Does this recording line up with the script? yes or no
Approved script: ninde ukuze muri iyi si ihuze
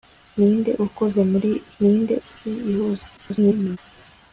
no